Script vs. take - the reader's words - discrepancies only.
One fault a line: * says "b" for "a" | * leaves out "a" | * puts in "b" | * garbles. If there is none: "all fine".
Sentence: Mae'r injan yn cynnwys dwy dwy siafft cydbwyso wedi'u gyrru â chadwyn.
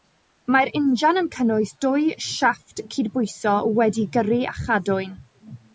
* leaves out "dwy"